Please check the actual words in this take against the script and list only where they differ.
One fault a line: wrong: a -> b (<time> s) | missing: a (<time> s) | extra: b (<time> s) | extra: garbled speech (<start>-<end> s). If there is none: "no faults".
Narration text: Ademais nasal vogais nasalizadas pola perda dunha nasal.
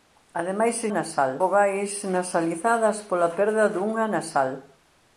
no faults